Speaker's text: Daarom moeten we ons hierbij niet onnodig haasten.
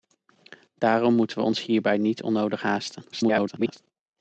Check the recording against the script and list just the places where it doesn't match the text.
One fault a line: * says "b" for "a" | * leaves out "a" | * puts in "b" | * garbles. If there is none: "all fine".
* garbles